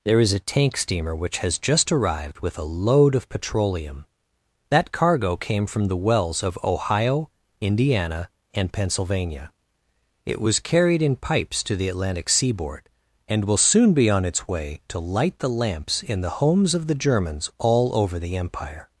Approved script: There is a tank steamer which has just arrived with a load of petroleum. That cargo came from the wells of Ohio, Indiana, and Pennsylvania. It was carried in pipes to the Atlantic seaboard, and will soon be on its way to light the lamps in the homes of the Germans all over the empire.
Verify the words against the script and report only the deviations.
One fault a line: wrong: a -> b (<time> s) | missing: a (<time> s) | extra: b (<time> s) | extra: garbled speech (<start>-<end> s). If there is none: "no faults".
no faults